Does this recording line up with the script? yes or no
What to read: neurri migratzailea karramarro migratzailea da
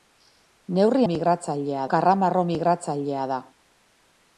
yes